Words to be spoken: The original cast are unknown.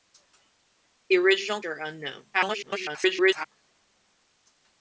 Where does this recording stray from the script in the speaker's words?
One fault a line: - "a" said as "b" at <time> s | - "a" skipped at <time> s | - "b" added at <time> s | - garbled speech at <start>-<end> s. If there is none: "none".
- "cast" skipped at 1.6 s
- garbled speech at 2.3-3.5 s